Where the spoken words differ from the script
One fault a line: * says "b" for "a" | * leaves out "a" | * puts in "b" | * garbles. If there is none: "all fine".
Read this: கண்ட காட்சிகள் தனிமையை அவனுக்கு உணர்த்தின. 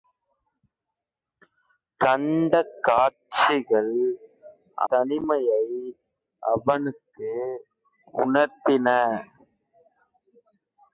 all fine